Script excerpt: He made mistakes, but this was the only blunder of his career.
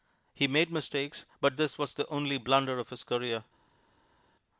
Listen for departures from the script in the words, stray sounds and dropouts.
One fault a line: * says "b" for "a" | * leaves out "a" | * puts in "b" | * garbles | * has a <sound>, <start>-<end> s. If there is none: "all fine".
all fine